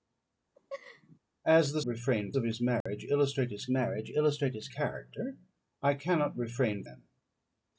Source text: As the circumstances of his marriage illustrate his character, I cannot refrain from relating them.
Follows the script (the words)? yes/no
no